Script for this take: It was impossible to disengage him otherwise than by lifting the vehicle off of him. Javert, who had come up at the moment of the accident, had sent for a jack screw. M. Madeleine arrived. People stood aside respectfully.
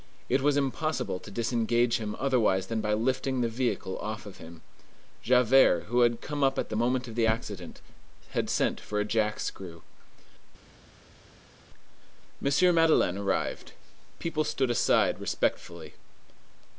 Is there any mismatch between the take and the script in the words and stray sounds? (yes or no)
no